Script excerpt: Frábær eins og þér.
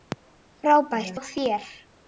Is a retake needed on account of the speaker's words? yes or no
yes